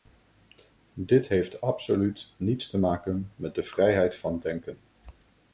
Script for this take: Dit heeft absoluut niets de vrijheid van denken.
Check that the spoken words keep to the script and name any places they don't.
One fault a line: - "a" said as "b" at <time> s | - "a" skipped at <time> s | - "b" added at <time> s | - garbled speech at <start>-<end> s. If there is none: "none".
- "te maken met" added at 2.7 s